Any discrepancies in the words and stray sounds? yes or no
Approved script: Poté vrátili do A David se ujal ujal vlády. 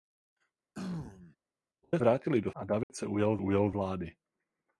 yes